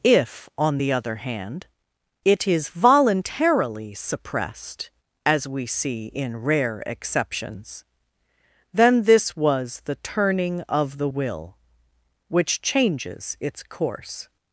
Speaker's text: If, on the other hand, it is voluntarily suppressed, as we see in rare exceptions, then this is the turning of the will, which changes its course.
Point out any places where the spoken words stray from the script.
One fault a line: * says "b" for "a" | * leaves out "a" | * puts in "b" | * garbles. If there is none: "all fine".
* says "was" for "is"